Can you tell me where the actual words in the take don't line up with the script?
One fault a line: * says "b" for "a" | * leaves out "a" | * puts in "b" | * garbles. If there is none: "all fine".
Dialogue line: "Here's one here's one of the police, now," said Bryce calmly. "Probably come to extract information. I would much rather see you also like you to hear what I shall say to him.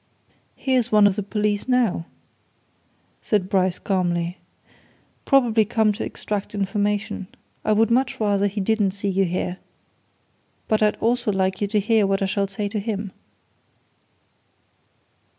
* leaves out "here's one"
* puts in "he didn't"
* puts in "here but I'd"